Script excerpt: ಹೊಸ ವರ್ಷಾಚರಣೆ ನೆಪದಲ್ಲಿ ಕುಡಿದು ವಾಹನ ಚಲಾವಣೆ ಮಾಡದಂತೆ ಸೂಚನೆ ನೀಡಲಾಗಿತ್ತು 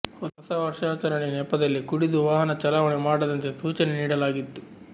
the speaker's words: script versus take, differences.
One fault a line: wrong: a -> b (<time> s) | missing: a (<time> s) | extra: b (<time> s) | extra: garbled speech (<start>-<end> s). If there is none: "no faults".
no faults